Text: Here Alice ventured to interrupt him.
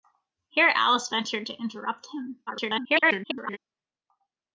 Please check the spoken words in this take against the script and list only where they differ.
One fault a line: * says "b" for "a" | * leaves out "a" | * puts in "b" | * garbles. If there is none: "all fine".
* garbles